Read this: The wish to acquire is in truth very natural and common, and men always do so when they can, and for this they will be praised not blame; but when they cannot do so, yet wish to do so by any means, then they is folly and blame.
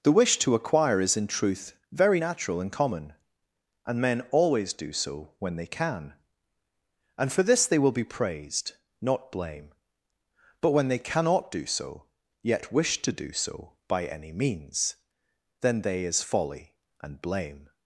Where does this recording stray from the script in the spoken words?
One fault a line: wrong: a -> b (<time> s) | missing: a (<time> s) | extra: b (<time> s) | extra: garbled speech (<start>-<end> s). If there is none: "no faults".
no faults